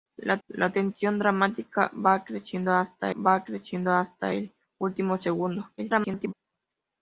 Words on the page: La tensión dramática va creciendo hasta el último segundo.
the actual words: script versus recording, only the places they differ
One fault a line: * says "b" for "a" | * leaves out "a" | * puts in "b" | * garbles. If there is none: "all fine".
* puts in "la"
* puts in "va creciendo hasta"
* garbles